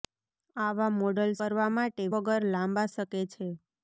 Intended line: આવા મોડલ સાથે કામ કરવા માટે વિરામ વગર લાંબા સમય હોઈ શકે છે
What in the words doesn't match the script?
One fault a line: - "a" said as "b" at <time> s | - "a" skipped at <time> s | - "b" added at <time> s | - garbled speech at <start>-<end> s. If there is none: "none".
- "સાથે કામ" skipped at 1.3 s
- "વિરામ" skipped at 2.1 s
- "સમય હોઈ" skipped at 2.9 s